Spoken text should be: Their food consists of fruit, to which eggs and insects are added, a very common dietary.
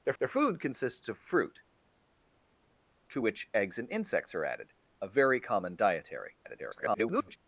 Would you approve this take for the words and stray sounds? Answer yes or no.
no